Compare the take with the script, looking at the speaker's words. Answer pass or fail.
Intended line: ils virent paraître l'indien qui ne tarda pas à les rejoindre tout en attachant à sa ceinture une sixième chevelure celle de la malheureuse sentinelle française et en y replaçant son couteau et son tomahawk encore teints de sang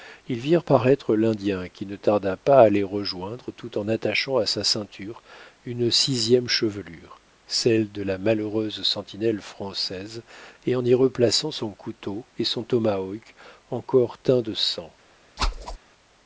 pass